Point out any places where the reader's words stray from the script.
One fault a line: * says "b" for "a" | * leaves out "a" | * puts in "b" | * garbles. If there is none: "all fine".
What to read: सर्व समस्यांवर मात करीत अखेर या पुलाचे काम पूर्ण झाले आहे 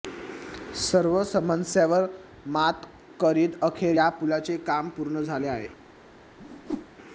all fine